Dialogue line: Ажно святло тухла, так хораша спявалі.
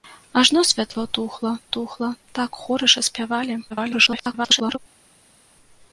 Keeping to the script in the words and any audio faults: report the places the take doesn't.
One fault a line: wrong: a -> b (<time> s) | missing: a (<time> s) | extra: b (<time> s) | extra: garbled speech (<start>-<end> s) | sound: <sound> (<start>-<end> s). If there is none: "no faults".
extra: тухла (1.8 s)
extra: garbled speech (3.7-4.8 s)